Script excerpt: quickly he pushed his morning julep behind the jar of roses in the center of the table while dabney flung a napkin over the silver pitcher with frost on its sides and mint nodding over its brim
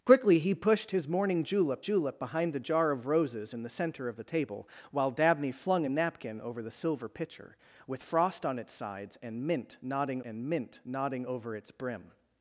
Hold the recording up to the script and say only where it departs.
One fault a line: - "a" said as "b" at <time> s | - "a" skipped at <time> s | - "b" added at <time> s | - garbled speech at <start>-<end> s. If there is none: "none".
- "julep" added at 1.8 s
- "and mint nodding" added at 10.2 s